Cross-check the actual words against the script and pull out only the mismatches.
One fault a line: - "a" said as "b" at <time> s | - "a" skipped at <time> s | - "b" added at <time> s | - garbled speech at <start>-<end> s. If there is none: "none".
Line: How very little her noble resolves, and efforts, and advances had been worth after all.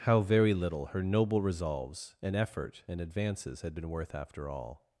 - "efforts" said as "effort" at 2.4 s